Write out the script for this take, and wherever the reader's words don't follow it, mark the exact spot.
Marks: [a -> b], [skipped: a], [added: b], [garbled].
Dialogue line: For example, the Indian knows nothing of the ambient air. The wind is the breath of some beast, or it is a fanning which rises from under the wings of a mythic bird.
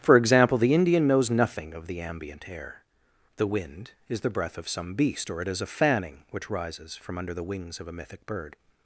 For example, the Indian knows nothing of the ambient air. The wind is the breath of some beast, or it is a fanning which rises from under the wings of a mythic bird.